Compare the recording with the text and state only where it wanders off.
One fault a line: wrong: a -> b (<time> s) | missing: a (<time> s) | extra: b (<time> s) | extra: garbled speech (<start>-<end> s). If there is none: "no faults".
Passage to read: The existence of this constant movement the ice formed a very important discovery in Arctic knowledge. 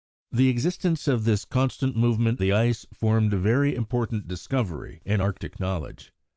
no faults